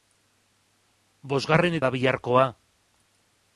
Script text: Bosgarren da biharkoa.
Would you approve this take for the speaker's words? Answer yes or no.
yes